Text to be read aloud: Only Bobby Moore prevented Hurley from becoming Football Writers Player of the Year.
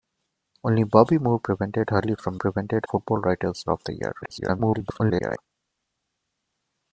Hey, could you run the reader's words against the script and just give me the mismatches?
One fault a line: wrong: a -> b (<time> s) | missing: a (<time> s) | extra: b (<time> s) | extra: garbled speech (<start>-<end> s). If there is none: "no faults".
wrong: becoming -> prevented (2.3 s)
missing: Player (3.6 s)
extra: garbled speech (4.2-5.4 s)